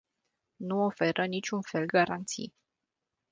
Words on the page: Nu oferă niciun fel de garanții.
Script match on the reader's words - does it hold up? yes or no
no